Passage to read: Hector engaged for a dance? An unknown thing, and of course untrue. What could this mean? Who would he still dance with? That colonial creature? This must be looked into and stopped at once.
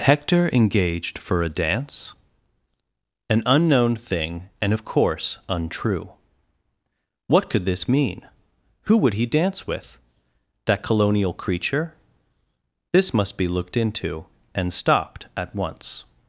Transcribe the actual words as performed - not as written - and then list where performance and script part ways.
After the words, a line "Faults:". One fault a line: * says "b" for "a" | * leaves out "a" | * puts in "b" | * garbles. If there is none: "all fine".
Hector engaged for a dance? An unknown thing, and of course untrue. What could this mean? Who would he dance with? That colonial creature? This must be looked into and stopped at once.
Faults:
* leaves out "still"